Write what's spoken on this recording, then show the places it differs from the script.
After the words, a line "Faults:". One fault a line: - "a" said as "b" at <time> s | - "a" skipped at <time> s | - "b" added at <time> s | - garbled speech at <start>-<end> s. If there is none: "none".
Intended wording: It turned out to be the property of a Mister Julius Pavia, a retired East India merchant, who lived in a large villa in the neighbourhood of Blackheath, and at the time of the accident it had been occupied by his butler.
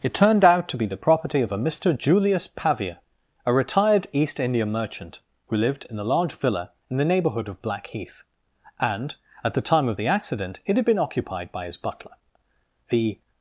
It turned out to be the property of a Mister Julius Pavia, a retired East India merchant, who lived in a large villa in the neighbourhood of Blackheath, and at the time of the accident it had been occupied by his butler. The
Faults:
- "The" added at 12.9 s